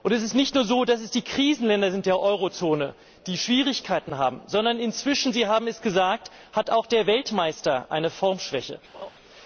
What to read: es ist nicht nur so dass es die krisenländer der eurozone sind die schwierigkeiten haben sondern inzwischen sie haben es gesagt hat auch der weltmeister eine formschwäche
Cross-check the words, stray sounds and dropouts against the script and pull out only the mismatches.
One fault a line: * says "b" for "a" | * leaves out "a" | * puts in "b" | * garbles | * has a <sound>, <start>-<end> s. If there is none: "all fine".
* has a laugh, 8.9-9.1 s